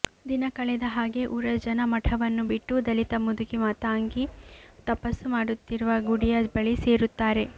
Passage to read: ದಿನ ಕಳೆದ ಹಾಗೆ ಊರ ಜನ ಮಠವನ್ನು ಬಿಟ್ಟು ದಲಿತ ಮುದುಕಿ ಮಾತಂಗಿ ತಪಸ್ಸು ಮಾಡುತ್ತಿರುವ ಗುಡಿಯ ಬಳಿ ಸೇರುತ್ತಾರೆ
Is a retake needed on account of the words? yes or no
no